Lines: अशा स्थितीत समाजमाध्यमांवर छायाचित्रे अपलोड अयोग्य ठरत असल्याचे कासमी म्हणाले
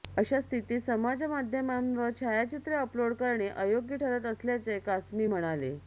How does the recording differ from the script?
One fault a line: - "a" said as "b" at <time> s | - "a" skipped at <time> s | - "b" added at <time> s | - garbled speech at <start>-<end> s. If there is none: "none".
- "करणे" added at 3.1 s